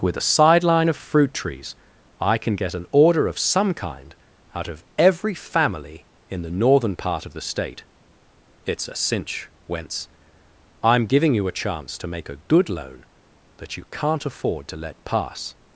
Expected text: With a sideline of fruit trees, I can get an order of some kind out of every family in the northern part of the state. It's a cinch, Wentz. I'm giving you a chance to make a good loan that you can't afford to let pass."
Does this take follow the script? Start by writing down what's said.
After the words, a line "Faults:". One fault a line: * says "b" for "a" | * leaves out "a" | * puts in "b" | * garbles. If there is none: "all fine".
With a sideline of fruit trees, I can get an order of some kind out of every family in the northern part of the state. It's a cinch, Wentz. I'm giving you a chance to make a good loan that you can't afford to let pass."
Faults:
all fine